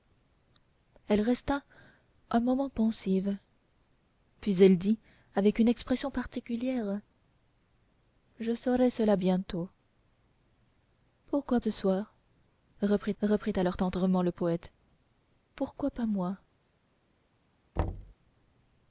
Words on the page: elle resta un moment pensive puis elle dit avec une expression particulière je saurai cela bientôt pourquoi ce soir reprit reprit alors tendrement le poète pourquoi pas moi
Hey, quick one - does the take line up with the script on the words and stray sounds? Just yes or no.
no